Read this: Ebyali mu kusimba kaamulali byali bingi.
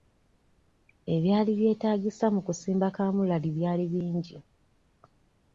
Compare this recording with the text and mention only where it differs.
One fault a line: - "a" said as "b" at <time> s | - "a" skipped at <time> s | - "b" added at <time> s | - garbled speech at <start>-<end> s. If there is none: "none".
- "byetaagisa" added at 1.6 s